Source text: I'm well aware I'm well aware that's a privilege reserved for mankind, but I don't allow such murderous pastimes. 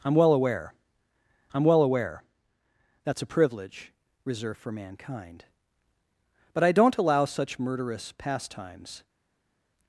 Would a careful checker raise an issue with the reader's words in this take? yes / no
no